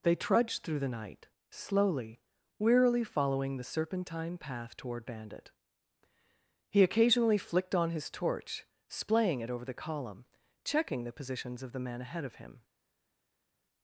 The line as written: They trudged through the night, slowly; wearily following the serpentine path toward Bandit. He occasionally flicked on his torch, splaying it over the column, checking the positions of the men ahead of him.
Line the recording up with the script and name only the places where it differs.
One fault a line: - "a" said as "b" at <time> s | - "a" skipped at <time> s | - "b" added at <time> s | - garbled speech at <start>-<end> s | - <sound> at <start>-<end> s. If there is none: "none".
none